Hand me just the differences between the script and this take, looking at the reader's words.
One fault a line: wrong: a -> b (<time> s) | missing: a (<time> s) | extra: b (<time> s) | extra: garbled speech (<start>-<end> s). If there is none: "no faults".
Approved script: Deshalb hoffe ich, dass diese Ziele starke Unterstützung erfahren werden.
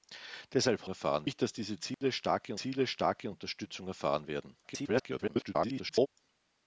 wrong: hoffe -> erfahren (0.9 s)
extra: Ziele starke (2.5 s)
extra: garbled speech (4.6-6.1 s)